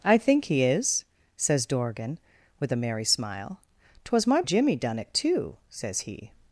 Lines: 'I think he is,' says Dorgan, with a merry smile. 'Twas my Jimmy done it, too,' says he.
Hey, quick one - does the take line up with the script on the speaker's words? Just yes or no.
yes